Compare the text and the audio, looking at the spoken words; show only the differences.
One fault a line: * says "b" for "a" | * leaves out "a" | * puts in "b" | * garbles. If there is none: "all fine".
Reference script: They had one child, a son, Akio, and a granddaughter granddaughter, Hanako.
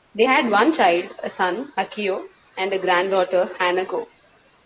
* leaves out "granddaughter"